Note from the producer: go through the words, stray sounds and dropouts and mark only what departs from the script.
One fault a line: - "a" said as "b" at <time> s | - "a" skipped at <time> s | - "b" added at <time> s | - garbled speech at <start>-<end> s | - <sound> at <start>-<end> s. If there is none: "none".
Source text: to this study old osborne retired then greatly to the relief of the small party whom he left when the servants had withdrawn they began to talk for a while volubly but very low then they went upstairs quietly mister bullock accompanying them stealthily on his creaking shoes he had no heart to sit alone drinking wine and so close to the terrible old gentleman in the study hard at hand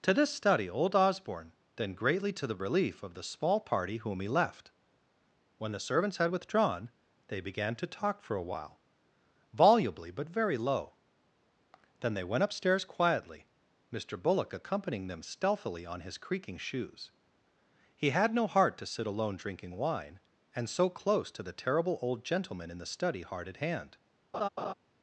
- "retired" skipped at 1.5 s
- laugh at 24.3-24.7 s